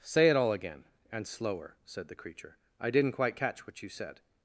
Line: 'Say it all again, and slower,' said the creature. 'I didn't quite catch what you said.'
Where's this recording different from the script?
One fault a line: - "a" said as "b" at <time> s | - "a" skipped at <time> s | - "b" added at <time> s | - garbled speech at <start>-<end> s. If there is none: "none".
none